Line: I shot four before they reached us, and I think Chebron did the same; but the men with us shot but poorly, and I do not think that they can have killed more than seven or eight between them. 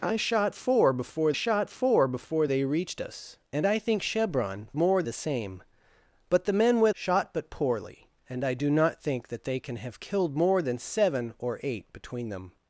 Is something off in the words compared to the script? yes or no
yes